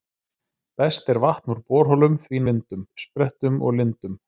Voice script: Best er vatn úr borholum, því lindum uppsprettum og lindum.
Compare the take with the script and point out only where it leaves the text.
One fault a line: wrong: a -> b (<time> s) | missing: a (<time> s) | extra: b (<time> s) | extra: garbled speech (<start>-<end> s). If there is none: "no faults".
no faults